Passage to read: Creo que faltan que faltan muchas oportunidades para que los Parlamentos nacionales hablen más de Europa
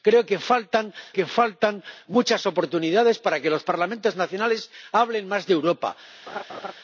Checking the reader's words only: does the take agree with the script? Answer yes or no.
yes